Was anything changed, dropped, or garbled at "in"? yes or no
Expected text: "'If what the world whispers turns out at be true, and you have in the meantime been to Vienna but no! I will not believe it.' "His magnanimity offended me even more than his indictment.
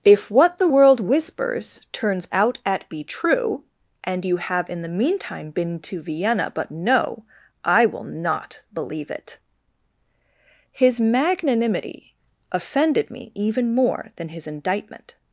no